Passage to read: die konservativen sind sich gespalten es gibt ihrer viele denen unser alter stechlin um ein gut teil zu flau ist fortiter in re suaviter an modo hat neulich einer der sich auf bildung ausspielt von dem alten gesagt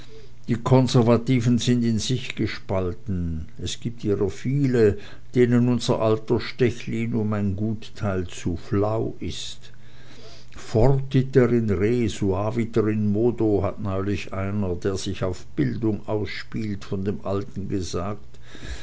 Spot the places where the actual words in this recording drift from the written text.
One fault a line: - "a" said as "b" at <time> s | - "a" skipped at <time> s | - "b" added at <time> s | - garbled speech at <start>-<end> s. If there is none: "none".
- "in" added at 1.8 s
- "an" said as "in" at 12.9 s